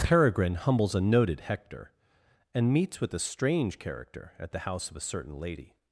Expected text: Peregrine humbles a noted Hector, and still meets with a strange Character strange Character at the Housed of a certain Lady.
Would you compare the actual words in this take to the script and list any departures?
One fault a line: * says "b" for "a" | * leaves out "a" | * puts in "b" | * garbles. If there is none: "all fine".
* leaves out "still"
* leaves out "strange Character"
* says "House" for "Housed"